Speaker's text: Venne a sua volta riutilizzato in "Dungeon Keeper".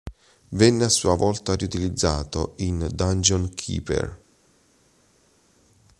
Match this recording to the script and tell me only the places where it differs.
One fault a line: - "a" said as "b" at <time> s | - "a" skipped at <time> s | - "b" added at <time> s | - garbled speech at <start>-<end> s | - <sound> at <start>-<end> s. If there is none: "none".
none